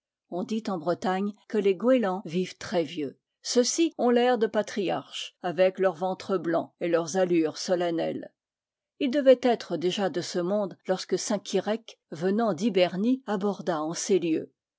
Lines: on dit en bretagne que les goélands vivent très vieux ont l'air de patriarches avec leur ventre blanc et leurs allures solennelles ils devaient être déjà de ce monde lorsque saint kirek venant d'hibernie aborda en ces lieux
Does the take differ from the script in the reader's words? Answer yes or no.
yes